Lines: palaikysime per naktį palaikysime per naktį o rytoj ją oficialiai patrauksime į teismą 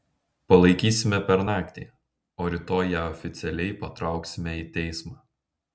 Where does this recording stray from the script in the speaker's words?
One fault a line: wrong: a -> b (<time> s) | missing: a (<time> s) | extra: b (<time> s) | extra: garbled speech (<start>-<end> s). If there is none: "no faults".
missing: palaikysime per naktį (1.8 s)